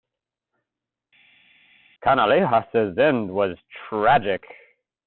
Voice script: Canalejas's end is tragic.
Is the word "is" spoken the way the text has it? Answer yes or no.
no